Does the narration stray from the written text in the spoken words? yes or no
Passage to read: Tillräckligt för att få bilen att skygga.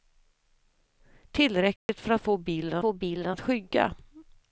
yes